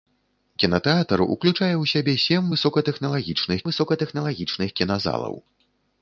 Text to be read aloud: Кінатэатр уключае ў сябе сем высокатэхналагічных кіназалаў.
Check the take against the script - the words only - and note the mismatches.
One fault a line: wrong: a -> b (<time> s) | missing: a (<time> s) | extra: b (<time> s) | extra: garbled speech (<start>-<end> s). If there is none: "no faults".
extra: высокатэхналагічных (3.7 s)